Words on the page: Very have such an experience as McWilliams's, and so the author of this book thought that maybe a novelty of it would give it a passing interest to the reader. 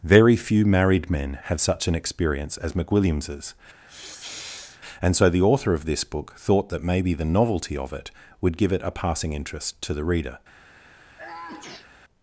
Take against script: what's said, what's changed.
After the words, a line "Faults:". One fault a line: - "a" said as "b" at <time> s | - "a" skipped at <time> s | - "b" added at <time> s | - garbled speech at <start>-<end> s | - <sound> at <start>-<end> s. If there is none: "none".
Very few married men have such an experience as McWilliams's, and so the author of this book thought that maybe the novelty of it would give it a passing interest to the reader.
Faults:
- "few married men" added at 0.3 s
- sniff at 3.9-4.8 s
- "a" said as "the" at 7.1 s
- sneeze at 11.2-11.9 s